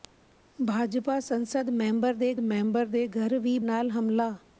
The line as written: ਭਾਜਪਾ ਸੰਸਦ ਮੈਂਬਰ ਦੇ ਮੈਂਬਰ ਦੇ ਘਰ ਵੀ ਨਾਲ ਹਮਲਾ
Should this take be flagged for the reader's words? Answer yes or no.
no